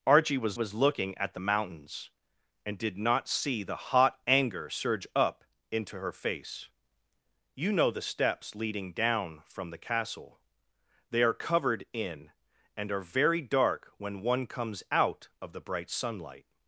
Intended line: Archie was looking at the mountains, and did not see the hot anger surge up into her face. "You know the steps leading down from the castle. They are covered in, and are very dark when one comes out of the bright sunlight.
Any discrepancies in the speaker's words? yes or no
yes